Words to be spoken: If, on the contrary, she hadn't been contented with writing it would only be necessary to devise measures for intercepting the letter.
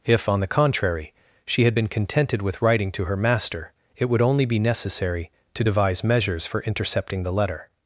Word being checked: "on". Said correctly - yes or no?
yes